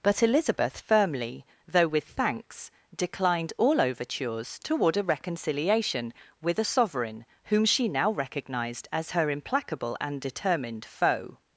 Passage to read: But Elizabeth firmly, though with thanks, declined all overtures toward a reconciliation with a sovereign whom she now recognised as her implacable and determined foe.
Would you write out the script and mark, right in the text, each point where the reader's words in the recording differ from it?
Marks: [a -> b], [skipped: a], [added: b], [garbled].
But Elizabeth firmly, though with thanks, declined all overtures toward a reconciliation with a sovereign whom she now recognised as her implacable and determined foe.